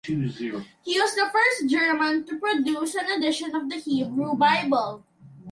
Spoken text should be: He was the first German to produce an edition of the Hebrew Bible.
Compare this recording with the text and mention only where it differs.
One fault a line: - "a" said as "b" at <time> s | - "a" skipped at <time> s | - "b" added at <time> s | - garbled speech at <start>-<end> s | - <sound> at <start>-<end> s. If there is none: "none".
none